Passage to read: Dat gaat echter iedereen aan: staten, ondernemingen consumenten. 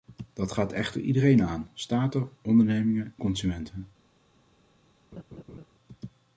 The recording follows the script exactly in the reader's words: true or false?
true